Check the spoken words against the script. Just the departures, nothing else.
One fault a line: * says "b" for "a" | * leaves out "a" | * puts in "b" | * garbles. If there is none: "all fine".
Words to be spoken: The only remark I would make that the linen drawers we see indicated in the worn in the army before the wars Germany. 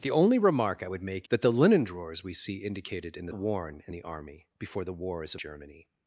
all fine